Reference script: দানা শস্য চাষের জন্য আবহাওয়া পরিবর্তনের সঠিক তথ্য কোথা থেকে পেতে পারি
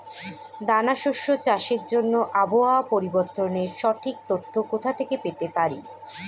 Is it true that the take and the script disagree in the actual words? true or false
false